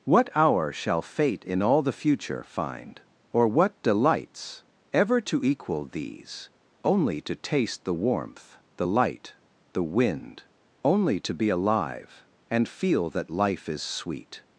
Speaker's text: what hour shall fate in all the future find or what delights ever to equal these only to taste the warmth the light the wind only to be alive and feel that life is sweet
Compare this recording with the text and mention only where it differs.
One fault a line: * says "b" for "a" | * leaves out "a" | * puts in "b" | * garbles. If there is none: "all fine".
all fine